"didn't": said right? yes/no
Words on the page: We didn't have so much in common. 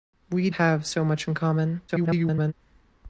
no